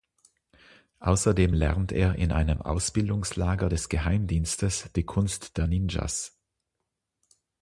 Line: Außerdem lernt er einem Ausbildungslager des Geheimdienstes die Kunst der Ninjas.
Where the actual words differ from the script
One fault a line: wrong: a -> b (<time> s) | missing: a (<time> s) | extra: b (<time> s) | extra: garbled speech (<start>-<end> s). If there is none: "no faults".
extra: in (2.1 s)